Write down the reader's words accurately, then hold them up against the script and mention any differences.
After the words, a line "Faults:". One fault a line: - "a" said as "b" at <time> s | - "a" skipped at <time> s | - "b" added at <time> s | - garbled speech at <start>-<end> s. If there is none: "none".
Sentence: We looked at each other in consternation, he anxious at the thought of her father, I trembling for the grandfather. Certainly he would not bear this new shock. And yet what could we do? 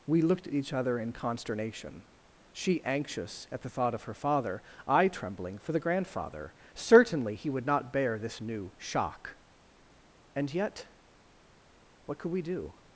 We looked at each other in consternation, she anxious at the thought of her father, I trembling for the grandfather. Certainly he would not bear this new shock. And yet what could we do?
Faults:
- "he" said as "she" at 2.5 s